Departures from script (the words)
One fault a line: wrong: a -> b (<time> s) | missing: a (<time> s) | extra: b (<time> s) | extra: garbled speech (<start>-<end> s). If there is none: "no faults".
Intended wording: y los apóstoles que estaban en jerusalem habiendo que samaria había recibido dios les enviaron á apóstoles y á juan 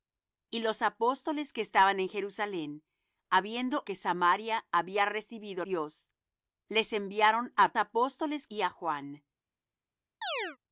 no faults